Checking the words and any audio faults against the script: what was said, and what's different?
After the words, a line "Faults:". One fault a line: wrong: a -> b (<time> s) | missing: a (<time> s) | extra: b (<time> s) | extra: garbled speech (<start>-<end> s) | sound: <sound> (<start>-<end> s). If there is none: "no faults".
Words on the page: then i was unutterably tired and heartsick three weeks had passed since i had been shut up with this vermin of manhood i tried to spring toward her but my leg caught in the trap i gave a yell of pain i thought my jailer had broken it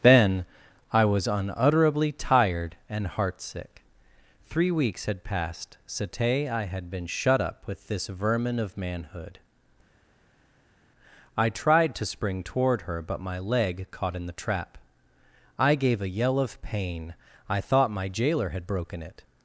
then i was unutterably tired and heartsick three weeks had passed sate i had been shut up with this vermin of manhood i tried to spring toward her but my leg caught in the trap i gave a yell of pain i thought my jailer had broken it
Faults:
wrong: since -> sate (5.8 s)